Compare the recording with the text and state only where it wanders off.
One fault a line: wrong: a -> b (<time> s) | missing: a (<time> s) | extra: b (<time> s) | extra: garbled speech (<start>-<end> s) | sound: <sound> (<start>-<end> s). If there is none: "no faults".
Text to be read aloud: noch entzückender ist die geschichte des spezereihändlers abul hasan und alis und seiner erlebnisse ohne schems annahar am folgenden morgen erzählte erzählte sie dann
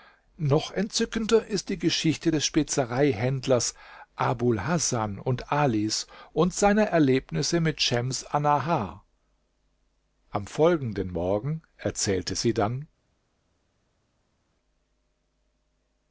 wrong: ohne -> mit (7.6 s)
missing: erzählte (12.4 s)